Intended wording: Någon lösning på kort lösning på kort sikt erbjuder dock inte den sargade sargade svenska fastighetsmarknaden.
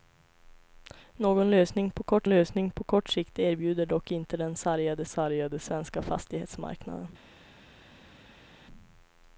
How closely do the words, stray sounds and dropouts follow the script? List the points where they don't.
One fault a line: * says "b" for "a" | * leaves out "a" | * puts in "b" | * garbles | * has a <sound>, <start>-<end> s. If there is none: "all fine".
all fine